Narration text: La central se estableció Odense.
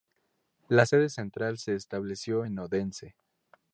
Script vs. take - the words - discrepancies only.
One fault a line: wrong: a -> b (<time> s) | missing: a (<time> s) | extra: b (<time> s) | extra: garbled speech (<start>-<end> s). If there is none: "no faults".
extra: sede (0.8 s)
extra: en (2.4 s)